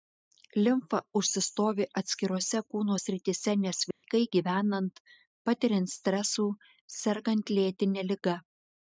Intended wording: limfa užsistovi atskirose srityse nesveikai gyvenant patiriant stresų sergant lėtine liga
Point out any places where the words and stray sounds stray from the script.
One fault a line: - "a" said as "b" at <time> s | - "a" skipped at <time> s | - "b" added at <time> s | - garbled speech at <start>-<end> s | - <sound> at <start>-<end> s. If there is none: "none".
- "kūno" added at 2.8 s
- dropout at 3.9-4.0 s